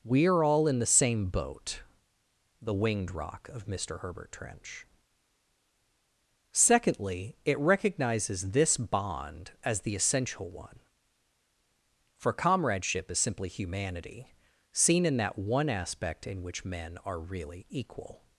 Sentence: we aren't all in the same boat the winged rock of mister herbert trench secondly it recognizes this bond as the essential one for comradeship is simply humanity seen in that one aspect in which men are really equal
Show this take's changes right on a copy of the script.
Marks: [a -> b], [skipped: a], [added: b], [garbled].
we [aren't -> are] all in the same boat the winged rock of mister herbert trench secondly it recognizes this bond as the essential one for comradeship is simply humanity seen in that one aspect in which men are really equal